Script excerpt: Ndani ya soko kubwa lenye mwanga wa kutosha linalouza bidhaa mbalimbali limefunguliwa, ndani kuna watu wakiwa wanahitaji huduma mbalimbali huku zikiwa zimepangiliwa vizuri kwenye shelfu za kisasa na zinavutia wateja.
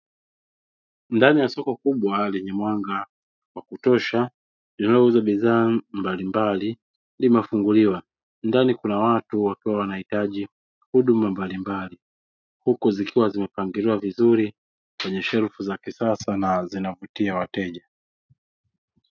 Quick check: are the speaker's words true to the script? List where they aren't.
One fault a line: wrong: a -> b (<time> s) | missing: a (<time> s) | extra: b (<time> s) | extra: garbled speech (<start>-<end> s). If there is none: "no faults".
no faults